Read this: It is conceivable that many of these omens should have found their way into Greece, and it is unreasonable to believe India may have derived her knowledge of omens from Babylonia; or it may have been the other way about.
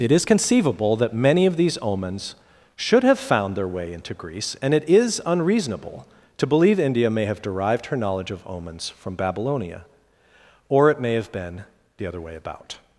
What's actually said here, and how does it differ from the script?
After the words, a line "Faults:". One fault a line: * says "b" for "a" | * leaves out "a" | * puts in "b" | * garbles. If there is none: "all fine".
It is conceivable that many of these omens should have found their way into Greece, and it is unreasonable to believe India may have derived her knowledge of omens from Babylonia; or it may have been the other way about.
Faults:
all fine